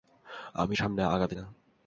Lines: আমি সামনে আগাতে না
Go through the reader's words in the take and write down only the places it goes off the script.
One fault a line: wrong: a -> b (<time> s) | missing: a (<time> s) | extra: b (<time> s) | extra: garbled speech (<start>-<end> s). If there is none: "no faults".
no faults